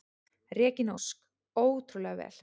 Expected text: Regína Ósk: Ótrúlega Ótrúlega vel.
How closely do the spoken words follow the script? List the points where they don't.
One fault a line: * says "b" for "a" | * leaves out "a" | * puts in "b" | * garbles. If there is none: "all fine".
* leaves out "Ótrúlega"